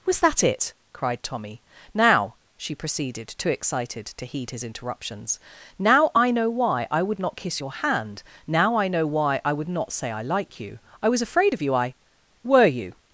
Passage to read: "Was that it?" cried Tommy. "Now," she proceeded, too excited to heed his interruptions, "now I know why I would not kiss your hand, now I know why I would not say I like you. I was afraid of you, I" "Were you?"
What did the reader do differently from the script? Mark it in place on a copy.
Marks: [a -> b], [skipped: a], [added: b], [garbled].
"Was that it?" cried Tommy. "Now," she proceeded, too excited to heed his interruptions, "now I know why I would not kiss your hand, now I know why I would not say I like you. I was afraid of you, I" "Were you?"